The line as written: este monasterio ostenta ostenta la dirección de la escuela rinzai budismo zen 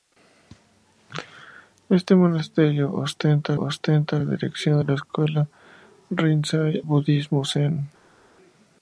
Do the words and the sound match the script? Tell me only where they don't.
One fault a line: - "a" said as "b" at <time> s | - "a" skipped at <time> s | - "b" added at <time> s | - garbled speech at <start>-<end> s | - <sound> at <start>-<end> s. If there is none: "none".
none